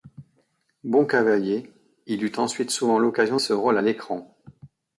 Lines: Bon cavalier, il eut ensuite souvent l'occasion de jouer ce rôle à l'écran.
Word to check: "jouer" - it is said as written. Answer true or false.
false